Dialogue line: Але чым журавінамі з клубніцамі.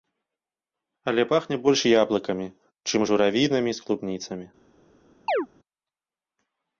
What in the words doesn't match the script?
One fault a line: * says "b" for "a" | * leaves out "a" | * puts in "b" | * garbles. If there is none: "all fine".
* puts in "пахне больш яблыкамі"